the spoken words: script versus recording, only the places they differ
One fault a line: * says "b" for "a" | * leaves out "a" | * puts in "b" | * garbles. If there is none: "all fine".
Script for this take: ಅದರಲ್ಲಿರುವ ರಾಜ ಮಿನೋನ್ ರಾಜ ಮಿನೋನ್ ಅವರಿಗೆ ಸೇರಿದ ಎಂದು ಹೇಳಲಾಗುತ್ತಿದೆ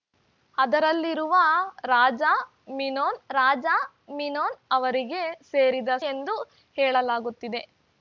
all fine